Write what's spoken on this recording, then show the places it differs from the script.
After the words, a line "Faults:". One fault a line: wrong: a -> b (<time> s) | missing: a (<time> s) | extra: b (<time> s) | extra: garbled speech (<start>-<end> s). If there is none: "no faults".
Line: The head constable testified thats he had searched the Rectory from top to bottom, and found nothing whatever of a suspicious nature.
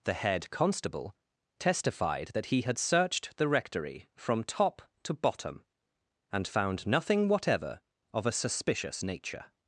The head constable testified that he had searched the Rectory from top to bottom, and found nothing whatever of a suspicious nature.
Faults:
wrong: thats -> that (2.3 s)